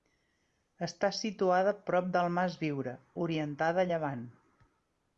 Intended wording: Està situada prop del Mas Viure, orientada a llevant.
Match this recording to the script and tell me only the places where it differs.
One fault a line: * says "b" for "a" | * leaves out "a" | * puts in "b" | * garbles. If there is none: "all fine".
all fine